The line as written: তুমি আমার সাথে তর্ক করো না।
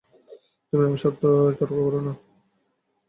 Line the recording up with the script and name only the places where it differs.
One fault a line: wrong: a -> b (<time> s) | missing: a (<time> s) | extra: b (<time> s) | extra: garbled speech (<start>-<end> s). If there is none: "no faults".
no faults